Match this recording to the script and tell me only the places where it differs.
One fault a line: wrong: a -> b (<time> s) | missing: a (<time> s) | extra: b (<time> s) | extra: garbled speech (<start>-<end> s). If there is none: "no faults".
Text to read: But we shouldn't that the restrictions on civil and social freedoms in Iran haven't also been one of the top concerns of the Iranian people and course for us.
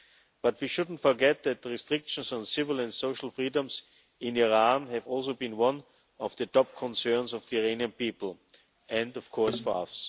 extra: forget (1.0 s)
wrong: haven't -> have (4.9 s)
extra: of (9.2 s)